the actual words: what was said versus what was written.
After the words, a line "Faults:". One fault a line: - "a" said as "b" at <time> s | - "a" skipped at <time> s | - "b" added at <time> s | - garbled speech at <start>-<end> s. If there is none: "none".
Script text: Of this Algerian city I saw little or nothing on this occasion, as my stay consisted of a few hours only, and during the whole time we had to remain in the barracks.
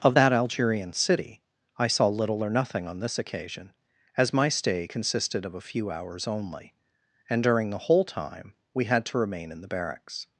Of that Algerian city I saw little or nothing on this occasion, as my stay consisted of a few hours only, and during the whole time we had to remain in the barracks.
Faults:
- "this" said as "that" at 0.1 s